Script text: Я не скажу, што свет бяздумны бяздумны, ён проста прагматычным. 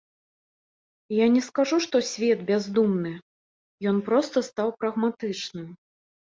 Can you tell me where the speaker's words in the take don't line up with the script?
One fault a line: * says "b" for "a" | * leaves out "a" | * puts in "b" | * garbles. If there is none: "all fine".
* leaves out "бяздумны"
* puts in "стаў"